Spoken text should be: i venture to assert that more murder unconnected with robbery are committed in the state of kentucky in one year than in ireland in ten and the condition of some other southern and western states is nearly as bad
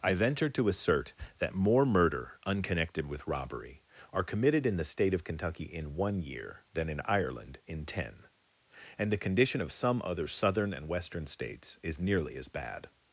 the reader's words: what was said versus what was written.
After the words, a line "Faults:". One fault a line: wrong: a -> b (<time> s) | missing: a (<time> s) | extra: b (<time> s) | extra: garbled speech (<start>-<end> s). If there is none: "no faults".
i venture to assert that more murder unconnected with robbery are committed in the state of kentucky in one year than in ireland in ten and the condition of some other southern and western states is nearly as bad
Faults:
no faults